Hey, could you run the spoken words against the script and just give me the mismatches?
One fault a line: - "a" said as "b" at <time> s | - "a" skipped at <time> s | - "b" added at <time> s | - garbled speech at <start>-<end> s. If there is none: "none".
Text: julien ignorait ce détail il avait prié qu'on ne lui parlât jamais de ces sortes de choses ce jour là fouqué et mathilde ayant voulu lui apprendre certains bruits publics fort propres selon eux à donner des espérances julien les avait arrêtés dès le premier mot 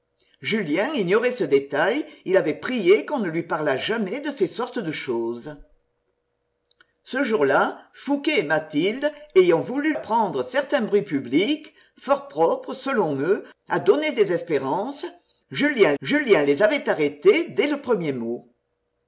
- "lui" skipped at 9.9 s
- "julien" added at 16.0 s